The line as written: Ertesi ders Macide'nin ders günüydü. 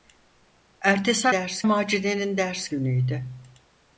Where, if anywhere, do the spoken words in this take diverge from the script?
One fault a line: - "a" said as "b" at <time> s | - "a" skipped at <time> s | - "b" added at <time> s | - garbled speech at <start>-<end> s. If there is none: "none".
none